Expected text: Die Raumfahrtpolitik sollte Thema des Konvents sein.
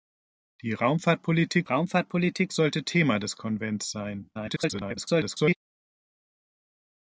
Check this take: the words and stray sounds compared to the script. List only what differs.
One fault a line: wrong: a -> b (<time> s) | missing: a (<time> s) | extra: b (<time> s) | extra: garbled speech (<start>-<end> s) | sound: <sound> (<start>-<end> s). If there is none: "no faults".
extra: Raumfahrtpolitik (1.6 s)
extra: garbled speech (4.3-5.6 s)